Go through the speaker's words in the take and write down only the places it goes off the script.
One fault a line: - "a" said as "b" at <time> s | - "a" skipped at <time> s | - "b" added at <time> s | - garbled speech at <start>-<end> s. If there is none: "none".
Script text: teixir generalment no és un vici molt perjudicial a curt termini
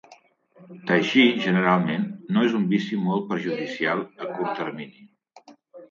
none